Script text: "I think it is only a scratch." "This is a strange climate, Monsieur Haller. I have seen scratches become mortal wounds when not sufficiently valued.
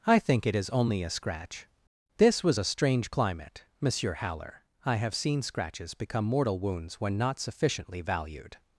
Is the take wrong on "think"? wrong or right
right